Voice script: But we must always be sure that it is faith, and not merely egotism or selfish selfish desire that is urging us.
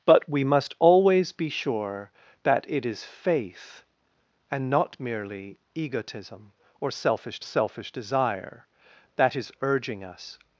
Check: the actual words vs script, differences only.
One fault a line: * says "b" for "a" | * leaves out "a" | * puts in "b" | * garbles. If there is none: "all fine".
all fine